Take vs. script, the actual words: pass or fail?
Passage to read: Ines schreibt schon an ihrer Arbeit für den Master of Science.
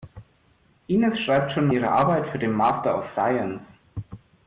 fail